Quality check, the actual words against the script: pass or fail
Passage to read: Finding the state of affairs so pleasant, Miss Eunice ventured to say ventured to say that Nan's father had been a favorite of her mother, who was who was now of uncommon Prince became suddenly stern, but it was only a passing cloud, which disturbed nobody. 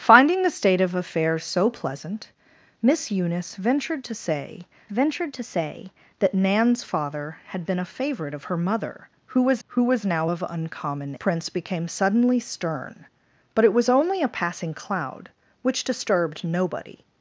pass